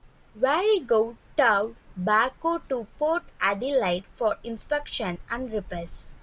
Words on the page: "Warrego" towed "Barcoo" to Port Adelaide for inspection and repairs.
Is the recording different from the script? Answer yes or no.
no